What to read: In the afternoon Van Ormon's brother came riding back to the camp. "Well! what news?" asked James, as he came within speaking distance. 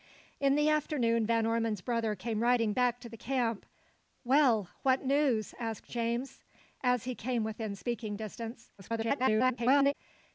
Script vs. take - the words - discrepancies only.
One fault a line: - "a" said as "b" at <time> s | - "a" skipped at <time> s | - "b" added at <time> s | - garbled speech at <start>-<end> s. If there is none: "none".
- garbled speech at 8.8-9.9 s